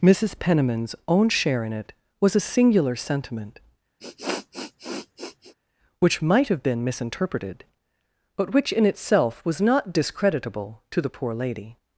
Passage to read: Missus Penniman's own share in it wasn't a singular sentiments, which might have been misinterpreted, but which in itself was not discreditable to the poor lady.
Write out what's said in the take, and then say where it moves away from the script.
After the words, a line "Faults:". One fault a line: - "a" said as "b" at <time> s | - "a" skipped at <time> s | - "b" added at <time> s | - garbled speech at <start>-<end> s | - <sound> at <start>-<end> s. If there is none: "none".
Missus Penniman's own share in it was a singular sentiment, which might have been misinterpreted, but which in itself was not discreditable to the poor lady.
Faults:
- "wasn't" said as "was" at 2.2 s
- "sentiments" said as "sentiment" at 3.0 s
- sniff at 4.0-5.5 s